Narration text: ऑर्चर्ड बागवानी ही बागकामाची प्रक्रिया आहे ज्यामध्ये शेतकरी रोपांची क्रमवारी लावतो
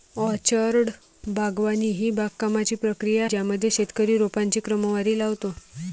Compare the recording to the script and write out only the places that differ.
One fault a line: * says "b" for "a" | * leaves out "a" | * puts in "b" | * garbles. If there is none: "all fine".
* leaves out "आहे"